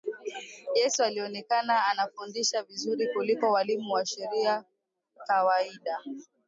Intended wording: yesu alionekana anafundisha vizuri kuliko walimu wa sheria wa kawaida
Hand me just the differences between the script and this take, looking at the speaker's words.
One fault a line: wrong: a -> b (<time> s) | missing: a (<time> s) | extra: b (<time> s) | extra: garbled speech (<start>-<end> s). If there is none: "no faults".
missing: wa (4.6 s)